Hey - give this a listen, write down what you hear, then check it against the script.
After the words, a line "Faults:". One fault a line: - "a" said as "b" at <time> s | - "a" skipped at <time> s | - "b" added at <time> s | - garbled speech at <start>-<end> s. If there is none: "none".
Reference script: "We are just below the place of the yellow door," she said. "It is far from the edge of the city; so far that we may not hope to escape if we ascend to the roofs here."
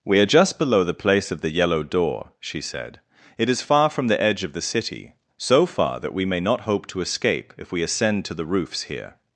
"We are just below the place of the yellow door," she said. "It is far from the edge of the city; so far that we may not hope to escape if we ascend to the roofs here."
Faults:
none